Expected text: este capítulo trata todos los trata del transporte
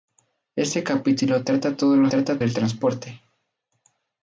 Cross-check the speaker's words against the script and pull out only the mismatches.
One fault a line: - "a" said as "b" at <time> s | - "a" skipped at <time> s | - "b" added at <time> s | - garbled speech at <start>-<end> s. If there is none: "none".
none